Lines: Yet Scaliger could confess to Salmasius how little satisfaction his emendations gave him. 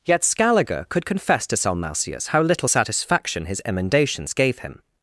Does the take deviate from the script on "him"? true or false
false